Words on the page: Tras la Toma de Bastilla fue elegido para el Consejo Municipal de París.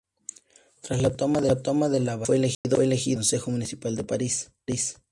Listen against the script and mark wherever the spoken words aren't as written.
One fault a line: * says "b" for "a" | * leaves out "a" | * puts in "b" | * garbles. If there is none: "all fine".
* puts in "la"